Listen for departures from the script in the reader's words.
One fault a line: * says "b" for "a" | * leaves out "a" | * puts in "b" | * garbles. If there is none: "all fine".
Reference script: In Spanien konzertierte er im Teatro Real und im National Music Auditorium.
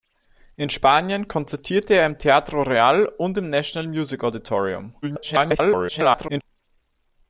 * garbles